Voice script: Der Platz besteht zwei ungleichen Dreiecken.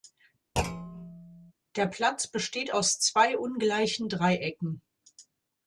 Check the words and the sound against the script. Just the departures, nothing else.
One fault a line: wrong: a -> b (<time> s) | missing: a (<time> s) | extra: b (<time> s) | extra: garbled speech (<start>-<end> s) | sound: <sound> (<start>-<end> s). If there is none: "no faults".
sound: thud (0.6-1.5 s)
extra: aus (2.7 s)